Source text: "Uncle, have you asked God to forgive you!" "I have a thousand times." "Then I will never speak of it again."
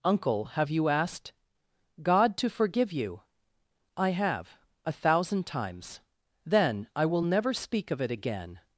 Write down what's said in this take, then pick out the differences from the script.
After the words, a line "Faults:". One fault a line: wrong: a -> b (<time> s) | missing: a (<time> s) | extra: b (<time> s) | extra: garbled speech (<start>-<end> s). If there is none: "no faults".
"Uncle, have you asked God to forgive you!" "I have a thousand times." "Then I will never speak of it again."
Faults:
no faults